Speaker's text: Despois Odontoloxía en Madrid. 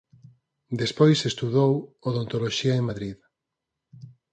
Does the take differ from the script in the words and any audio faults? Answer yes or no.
yes